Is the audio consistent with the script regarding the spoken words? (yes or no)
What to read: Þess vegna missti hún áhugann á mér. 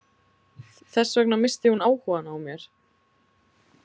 yes